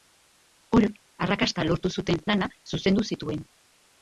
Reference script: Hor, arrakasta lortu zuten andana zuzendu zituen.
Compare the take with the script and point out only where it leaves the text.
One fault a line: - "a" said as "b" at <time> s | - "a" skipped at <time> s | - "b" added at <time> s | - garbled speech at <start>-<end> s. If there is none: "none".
none